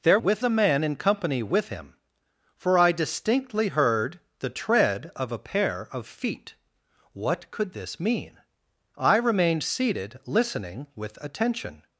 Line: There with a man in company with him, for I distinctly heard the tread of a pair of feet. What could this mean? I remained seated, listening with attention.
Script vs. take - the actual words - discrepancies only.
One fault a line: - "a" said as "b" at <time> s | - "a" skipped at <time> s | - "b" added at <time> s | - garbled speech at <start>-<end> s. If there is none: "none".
none